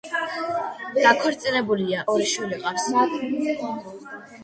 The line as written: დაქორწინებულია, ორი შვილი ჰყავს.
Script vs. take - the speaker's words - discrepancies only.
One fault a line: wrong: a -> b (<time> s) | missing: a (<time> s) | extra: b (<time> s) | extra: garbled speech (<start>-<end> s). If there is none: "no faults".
no faults